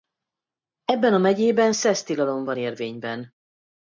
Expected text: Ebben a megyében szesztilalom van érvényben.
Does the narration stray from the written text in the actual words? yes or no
no